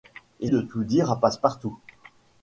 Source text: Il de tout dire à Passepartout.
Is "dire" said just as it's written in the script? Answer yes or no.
yes